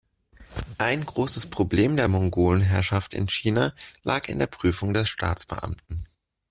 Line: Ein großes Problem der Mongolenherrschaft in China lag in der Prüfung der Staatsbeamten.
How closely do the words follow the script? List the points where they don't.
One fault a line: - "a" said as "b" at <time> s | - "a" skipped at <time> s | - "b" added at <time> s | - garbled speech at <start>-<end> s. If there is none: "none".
none